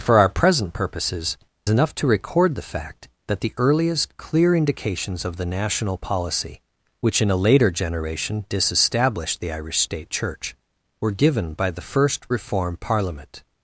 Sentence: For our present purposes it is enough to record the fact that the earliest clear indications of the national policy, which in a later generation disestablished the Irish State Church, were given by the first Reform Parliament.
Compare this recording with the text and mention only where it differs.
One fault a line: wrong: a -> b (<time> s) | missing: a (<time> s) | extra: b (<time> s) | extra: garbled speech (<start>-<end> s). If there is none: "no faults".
missing: it is (1.4 s)